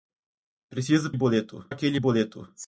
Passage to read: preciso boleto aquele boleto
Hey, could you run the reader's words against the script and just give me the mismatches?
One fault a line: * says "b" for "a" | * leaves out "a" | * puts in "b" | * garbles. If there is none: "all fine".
all fine